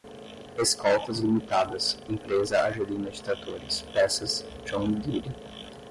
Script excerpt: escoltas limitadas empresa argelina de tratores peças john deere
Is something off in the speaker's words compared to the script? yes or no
no